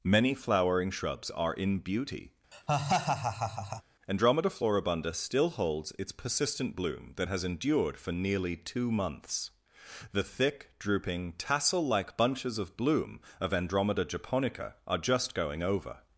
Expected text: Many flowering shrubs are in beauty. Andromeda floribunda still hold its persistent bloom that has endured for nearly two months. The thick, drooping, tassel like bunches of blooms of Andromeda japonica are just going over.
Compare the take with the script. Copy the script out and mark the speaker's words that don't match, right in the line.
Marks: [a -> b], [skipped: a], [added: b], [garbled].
Many flowering shrubs are in beauty. Andromeda floribunda still [hold -> holds] its persistent bloom that has endured for nearly two months. The thick, drooping, tassel like bunches of [blooms -> bloom] of Andromeda japonica are just going over.